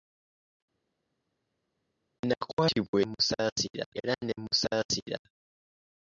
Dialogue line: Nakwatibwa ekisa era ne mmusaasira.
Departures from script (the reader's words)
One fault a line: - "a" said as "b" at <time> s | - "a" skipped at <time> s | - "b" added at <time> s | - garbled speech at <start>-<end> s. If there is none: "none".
- "ekisa" said as "mmusaasira" at 3.1 s